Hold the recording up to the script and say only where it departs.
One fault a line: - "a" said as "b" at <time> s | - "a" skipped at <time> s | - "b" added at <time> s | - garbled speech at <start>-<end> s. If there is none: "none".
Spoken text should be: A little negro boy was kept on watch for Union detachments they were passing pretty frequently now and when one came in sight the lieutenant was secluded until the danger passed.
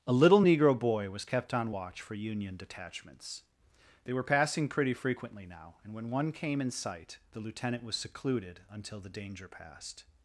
none